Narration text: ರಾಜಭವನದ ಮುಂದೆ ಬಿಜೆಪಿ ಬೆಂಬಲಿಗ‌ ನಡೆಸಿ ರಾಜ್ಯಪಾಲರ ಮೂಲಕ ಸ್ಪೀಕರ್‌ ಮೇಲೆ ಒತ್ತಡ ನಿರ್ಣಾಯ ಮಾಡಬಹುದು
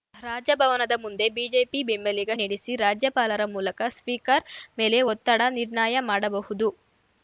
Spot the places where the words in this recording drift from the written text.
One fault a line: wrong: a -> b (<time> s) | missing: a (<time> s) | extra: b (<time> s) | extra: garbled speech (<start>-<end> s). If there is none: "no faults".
no faults